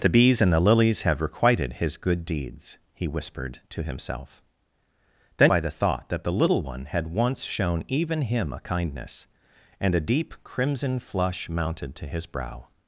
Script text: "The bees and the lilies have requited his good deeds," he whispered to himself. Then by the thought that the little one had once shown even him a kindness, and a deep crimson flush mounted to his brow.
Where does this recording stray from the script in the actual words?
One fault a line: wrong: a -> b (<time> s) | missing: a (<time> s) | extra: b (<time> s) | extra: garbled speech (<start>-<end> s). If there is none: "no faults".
no faults